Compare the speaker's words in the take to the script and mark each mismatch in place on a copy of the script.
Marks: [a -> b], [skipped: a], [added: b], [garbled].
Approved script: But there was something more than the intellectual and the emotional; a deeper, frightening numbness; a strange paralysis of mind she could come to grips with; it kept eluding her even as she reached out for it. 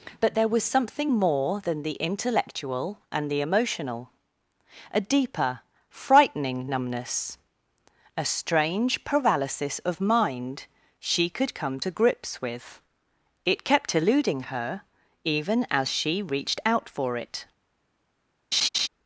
But there was something more than the intellectual and the emotional; a deeper, frightening numbness; a strange paralysis of mind she could come to grips with; it kept eluding her even as she reached out for it.